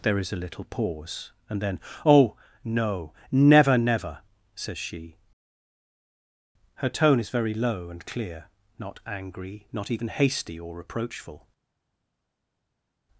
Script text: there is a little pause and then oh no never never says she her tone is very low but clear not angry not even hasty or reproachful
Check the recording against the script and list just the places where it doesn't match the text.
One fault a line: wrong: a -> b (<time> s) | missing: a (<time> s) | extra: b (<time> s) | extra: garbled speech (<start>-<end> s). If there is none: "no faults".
wrong: but -> and (7.9 s)